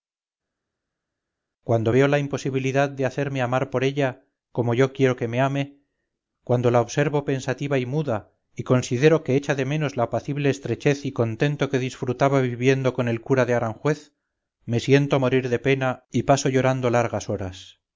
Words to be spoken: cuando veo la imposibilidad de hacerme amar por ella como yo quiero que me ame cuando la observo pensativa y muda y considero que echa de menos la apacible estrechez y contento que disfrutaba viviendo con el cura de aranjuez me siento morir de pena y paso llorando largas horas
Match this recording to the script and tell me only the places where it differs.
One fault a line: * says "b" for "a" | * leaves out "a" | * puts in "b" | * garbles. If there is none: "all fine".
all fine